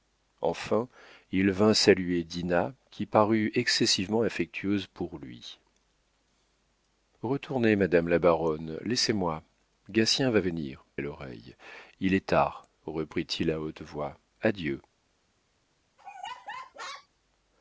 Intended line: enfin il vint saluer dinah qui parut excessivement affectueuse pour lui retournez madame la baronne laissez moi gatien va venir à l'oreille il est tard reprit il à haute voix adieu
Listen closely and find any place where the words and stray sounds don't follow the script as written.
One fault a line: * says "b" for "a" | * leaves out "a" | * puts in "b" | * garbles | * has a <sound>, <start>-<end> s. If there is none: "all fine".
* has a laugh, 16.0-17.1 s